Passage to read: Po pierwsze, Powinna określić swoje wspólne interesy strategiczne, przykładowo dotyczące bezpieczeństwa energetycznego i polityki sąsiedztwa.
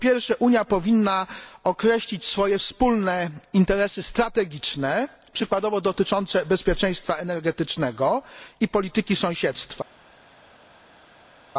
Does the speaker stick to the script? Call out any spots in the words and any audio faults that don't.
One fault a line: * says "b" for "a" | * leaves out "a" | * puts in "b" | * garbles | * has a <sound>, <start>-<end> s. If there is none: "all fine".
* puts in "Unia"